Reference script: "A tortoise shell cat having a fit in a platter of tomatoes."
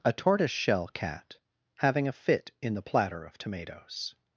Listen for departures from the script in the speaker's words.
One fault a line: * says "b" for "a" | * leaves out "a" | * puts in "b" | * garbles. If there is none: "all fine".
* says "the" for "a"